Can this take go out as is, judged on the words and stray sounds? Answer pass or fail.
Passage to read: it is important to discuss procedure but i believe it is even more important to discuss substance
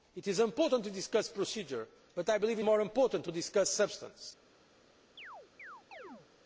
fail